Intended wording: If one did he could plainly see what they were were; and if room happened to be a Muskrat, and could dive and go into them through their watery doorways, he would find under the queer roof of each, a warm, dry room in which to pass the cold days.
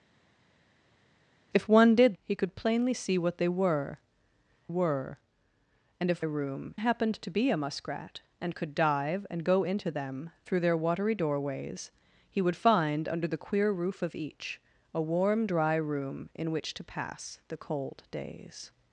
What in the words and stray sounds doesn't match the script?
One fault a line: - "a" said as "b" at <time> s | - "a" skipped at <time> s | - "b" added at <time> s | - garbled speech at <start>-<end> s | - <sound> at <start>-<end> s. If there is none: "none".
none